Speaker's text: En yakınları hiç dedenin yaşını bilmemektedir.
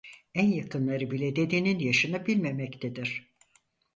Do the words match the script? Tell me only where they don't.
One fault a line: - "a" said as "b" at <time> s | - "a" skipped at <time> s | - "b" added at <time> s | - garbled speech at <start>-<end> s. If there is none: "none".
- "hiç" said as "bile" at 1.1 s